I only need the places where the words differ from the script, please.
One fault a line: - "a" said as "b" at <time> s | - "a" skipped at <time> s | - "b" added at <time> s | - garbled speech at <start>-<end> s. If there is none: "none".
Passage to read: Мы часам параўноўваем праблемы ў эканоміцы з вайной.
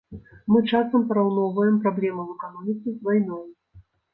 none